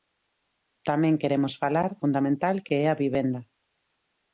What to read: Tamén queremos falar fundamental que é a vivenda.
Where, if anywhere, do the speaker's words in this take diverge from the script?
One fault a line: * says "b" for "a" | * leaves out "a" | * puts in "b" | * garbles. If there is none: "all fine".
all fine